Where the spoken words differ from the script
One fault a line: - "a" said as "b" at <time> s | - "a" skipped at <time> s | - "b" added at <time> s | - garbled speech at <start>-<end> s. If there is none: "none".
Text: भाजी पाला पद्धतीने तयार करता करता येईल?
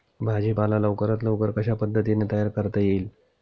- "लवकरात लवकर कशा" added at 0.8 s
- "करता" skipped at 2.8 s